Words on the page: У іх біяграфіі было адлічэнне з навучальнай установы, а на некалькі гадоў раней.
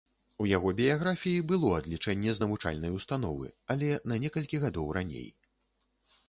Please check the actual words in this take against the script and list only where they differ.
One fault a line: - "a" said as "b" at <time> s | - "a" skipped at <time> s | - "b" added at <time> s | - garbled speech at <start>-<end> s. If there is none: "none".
- "іх" said as "яго" at 0.5 s
- "а" said as "але" at 3.8 s